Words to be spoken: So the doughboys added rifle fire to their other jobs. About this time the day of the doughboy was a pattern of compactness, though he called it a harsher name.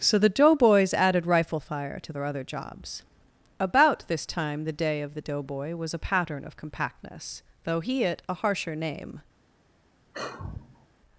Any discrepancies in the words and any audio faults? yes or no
yes